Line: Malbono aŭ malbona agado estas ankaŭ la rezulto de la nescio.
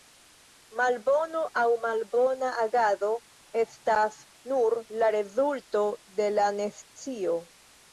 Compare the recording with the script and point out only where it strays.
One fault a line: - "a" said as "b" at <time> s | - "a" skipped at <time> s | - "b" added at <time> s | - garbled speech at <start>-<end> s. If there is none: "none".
- "ankaŭ" said as "nur" at 4.5 s